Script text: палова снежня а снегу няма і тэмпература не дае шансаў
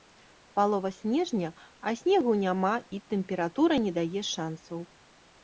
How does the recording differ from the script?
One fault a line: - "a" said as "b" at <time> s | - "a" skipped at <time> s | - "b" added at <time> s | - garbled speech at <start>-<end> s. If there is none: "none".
none